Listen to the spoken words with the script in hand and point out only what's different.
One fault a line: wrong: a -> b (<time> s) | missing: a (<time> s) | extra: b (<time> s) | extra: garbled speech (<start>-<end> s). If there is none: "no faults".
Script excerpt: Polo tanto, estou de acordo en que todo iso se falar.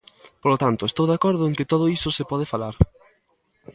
extra: pode (2.3 s)